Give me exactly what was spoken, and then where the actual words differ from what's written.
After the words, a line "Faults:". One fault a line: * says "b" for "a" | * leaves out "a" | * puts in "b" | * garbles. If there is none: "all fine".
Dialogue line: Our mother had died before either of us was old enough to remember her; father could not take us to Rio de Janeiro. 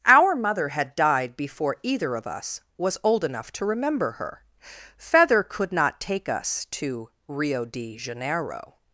Our mother had died before either of us was old enough to remember her; feather could not take us to Rio de Janeiro.
Faults:
* says "feather" for "father"